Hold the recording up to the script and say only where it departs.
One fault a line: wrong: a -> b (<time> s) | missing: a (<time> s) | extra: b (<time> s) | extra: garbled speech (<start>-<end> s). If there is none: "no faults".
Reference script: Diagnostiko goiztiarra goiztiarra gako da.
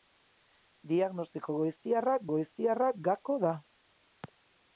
no faults